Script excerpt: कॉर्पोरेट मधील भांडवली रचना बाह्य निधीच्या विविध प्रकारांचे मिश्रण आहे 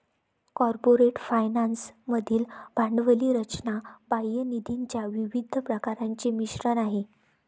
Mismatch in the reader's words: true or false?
true